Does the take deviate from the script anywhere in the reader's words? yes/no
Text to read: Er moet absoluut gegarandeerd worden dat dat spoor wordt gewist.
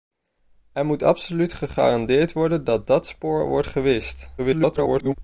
yes